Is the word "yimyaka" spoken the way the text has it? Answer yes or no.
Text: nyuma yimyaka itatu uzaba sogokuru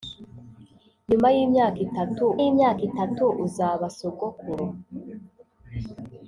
yes